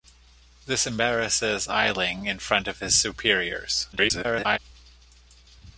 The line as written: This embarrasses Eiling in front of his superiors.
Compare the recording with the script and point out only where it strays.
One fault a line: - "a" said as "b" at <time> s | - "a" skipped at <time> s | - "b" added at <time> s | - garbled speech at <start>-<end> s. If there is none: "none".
- garbled speech at 3.9-4.6 s